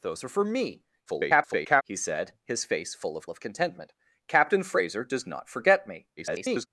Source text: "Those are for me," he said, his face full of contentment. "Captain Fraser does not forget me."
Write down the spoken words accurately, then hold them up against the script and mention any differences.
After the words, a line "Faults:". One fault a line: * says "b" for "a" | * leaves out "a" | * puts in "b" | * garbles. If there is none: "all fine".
"Those are for me," [garbled] he said, his face full of of contentment. "Captain Fraser does not forget me." [garbled]
Faults:
* garbles
* puts in "of"
* garbles